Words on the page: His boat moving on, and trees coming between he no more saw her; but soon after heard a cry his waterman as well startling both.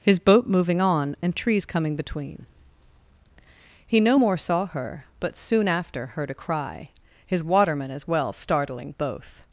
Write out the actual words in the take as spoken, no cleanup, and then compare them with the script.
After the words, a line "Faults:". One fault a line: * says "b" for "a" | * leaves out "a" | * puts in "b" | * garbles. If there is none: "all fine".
His boat moving on, and trees coming between he no more saw her; but soon after heard a cry his waterman as well startling both.
Faults:
all fine